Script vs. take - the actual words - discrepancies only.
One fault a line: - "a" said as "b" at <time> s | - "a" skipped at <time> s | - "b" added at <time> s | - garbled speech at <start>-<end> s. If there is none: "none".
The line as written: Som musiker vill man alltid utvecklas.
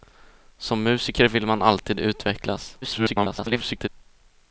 - garbled speech at 2.8-3.9 s